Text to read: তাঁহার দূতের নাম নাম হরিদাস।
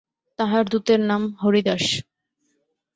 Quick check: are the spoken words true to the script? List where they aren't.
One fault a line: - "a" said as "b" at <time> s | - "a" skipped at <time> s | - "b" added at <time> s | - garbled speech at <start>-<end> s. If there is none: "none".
- "নাম" skipped at 1.2 s